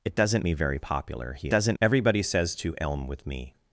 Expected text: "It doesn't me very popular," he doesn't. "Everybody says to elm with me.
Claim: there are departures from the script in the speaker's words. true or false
false